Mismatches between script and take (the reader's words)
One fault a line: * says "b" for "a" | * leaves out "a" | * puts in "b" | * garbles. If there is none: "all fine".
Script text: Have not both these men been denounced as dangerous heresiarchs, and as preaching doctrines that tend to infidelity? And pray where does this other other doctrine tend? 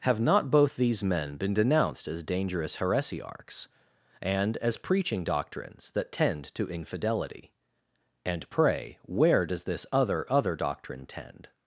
all fine